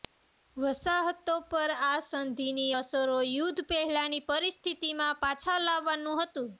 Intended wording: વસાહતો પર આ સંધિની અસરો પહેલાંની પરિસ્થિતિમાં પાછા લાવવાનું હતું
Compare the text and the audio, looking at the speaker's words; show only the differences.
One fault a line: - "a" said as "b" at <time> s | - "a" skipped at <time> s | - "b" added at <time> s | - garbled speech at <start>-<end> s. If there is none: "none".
- "યુદ્ધ" added at 3.3 s